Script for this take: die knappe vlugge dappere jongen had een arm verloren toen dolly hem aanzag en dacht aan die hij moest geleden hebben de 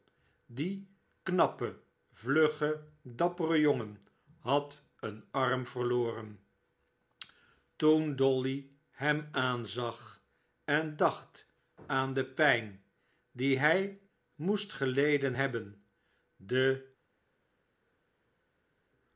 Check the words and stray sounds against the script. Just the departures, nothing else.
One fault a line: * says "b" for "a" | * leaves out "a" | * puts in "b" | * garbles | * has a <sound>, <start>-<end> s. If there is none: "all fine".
* puts in "de pijn"